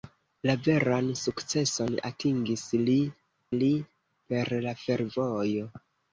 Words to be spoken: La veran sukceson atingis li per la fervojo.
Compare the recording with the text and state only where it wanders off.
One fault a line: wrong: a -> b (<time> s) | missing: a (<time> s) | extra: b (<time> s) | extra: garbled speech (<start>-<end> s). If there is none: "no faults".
extra: li (3.6 s)